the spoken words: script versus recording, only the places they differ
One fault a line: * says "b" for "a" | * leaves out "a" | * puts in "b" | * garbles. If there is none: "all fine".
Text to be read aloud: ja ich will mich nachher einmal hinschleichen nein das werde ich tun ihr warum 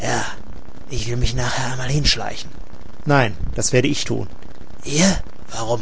all fine